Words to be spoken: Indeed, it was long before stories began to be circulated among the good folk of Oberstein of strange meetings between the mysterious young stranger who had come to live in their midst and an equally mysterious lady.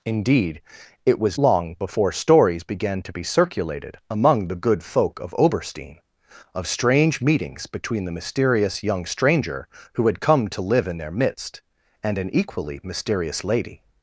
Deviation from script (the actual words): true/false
false